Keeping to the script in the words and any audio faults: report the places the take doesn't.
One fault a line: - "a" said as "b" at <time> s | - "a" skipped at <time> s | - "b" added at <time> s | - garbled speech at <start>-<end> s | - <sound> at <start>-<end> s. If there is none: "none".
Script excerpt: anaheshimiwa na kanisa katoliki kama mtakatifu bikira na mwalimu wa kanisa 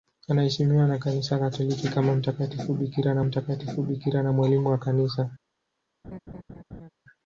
- "mtakatifu bikira na" added at 3.2 s
- laugh at 6.0-6.9 s